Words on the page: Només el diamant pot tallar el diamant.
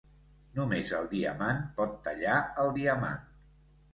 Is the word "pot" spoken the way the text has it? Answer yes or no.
yes